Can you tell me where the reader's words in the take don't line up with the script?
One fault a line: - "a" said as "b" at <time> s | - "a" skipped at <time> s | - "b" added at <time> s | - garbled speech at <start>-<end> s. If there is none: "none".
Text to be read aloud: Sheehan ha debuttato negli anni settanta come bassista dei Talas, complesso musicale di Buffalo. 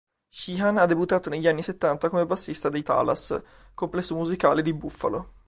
none